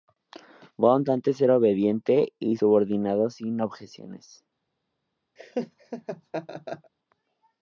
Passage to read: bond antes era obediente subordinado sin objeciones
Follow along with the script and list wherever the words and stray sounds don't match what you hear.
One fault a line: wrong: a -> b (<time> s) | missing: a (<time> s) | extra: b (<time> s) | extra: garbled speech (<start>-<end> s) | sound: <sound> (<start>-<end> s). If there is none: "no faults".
extra: y (2.4 s)
sound: laugh (5.4-6.9 s)